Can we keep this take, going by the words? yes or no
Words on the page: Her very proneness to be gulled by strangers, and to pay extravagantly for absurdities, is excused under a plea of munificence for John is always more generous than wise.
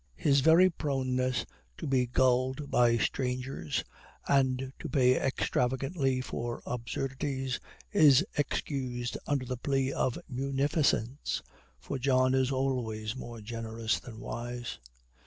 no